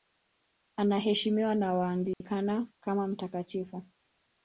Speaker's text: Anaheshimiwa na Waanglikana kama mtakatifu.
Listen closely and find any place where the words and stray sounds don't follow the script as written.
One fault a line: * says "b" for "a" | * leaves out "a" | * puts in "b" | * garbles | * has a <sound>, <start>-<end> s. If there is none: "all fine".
* has a dropout, 2.1-2.2 s